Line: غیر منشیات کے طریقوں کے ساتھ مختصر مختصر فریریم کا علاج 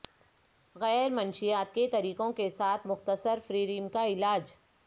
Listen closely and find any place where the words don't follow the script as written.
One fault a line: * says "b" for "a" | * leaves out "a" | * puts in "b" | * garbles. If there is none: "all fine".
* leaves out "مختصر"